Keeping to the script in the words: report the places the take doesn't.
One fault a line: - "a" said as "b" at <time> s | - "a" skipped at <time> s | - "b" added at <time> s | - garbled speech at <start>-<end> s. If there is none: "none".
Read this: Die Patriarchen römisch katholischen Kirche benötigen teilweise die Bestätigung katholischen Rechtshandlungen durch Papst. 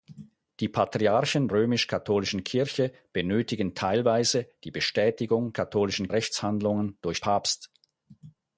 none